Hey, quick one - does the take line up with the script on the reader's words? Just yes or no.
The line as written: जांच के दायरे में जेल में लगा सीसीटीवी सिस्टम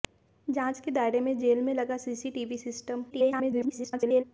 no